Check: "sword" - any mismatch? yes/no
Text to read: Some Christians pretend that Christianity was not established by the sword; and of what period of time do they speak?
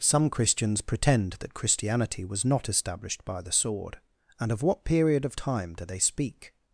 no